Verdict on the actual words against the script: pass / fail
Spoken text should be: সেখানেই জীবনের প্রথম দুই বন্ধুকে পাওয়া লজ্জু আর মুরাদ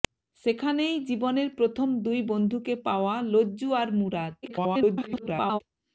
fail